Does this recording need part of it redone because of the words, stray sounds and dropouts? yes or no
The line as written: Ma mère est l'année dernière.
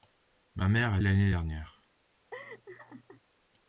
yes